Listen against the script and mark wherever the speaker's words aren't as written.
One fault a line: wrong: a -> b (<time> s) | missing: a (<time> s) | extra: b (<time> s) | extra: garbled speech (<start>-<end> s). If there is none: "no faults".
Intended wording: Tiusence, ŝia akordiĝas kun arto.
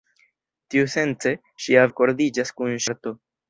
no faults